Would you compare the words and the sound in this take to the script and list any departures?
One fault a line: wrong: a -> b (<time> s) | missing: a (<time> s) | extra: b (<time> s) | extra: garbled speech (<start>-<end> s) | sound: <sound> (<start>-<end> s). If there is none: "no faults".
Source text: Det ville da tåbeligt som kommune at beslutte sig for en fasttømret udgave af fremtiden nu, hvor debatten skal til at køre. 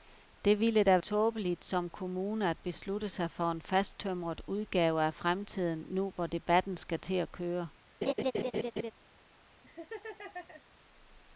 sound: laugh (8.0-8.9 s)
sound: laugh (9.6-10.6 s)